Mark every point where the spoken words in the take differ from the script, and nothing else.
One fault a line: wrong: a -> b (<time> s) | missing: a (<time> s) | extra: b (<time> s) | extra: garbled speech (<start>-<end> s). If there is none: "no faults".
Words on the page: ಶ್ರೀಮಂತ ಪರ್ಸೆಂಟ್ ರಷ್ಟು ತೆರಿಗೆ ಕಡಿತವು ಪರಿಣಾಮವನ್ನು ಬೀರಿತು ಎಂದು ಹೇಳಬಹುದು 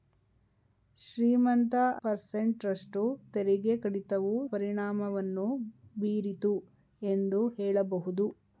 no faults